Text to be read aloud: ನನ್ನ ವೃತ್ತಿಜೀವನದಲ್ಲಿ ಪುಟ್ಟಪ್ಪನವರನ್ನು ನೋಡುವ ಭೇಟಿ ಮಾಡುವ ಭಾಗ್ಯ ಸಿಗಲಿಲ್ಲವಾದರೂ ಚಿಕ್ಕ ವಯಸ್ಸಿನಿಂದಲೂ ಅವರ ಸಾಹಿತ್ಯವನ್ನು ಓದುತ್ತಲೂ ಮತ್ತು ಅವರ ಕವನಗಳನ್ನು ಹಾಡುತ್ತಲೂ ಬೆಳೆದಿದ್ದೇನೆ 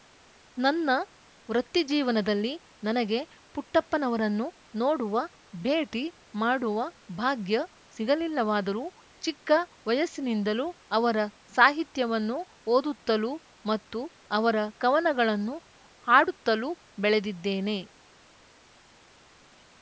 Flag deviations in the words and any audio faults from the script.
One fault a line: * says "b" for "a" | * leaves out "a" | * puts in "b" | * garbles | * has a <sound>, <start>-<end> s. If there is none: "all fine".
* puts in "ನನಗೆ"